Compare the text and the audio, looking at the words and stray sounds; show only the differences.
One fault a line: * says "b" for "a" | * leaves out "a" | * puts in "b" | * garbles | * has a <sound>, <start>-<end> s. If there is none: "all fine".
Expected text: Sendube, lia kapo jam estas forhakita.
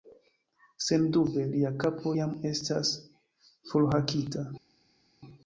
all fine